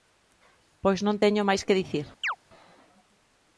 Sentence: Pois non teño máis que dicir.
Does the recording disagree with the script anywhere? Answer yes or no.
no